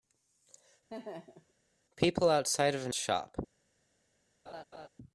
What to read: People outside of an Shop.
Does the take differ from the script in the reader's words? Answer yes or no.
no